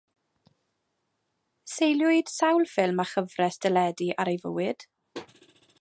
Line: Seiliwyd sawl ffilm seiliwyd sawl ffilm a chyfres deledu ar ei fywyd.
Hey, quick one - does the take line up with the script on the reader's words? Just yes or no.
no